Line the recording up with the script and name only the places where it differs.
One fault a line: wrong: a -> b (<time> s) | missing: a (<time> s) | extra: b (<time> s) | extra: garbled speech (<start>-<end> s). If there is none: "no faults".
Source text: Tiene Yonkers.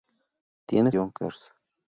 no faults